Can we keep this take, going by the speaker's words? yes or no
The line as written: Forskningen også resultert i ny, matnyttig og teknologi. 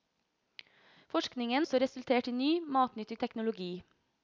yes